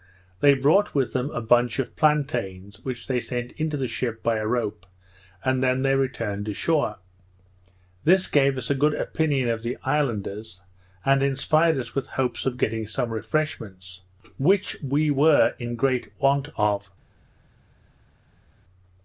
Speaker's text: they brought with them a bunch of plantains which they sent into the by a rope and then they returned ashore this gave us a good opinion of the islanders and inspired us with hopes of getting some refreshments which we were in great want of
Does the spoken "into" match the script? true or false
true